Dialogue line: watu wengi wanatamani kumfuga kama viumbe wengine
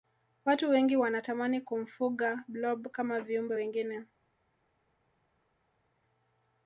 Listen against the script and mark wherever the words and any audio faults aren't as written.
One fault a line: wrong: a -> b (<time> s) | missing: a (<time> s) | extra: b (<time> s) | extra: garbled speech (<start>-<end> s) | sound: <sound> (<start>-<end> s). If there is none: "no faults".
extra: blob (2.5 s)